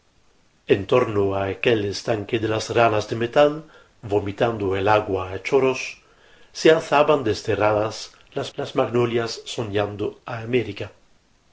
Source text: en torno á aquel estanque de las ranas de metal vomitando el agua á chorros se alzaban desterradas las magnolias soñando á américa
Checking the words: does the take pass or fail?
fail